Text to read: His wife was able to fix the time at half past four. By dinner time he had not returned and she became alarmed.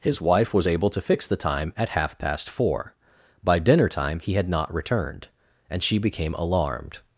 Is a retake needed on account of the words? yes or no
no